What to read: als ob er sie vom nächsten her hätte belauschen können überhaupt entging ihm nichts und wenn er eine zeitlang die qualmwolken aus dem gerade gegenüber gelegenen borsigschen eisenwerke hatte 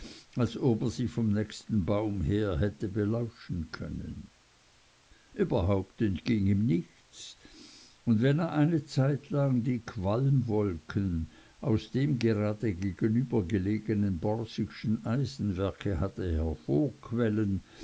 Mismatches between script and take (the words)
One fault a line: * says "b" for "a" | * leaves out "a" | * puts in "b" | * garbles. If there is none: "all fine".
* puts in "baum"